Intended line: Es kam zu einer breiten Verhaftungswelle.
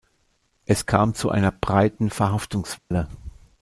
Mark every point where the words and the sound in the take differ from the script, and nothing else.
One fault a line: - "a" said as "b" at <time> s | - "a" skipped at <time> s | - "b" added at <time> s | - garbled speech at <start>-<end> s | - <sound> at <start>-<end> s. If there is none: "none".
- dropout at 2.8-2.9 s